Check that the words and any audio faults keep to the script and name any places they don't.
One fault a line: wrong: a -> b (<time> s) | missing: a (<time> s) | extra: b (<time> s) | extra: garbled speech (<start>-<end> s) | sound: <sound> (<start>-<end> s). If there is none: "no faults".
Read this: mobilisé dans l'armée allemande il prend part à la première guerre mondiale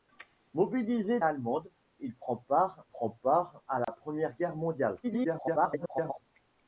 wrong: dans l'armée allemande il -> allemande il prend part (1.2 s)
sound: dropout (3.8-3.9 s)
extra: garbled speech (5.0-6.3 s)